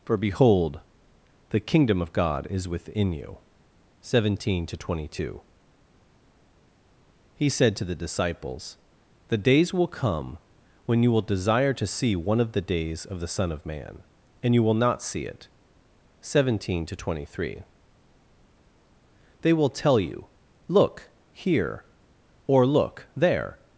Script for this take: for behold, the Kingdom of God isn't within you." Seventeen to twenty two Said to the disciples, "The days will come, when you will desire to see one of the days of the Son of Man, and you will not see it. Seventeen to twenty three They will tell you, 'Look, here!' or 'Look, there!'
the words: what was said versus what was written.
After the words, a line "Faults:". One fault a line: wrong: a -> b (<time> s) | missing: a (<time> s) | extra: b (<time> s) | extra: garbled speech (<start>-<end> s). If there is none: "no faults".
for behold, the Kingdom of God is within you." Seventeen to twenty two He said to the disciples, "The days will come, when you will desire to see one of the days of the Son of Man, and you will not see it. Seventeen to twenty three They will tell you, 'Look, here!' or 'Look, there!'
Faults:
wrong: isn't -> is (2.5 s)
extra: He (7.3 s)